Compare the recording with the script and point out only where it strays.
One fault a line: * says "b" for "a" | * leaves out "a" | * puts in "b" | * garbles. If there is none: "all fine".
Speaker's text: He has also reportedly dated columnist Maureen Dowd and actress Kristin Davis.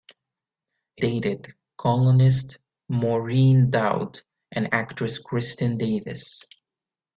* leaves out "has also reportedly"